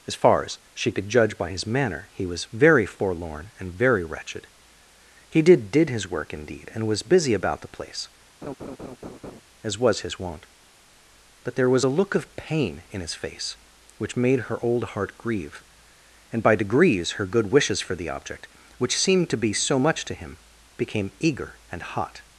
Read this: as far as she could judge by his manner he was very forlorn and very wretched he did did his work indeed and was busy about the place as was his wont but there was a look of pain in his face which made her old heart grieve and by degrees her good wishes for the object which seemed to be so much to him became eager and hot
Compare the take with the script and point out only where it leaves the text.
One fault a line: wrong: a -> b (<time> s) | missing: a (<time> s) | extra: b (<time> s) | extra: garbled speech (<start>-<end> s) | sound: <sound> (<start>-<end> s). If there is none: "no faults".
sound: laugh (8.4-9.4 s)